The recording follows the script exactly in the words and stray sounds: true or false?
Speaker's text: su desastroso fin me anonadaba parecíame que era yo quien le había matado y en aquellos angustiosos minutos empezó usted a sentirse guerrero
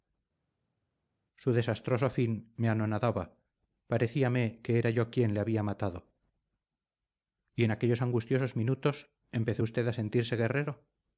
true